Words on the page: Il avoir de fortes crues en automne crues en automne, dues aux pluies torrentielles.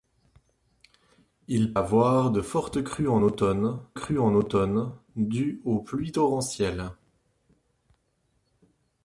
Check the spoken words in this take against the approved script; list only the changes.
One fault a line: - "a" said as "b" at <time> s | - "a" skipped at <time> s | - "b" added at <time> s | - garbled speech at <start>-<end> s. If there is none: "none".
none